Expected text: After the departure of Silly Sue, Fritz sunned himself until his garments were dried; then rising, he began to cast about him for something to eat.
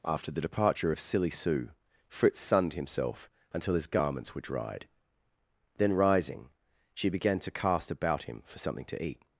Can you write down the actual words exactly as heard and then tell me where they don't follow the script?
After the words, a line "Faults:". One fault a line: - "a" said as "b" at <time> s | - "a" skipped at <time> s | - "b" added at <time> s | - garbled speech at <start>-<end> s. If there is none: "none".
After the departure of Silly Sue, Fritz sunned himself until his garments were dried; then rising, she began to cast about him for something to eat.
Faults:
- "he" said as "she" at 6.9 s